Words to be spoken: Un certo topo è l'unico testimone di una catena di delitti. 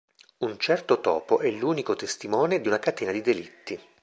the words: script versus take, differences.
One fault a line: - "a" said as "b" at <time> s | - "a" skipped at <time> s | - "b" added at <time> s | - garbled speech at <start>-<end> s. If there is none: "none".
none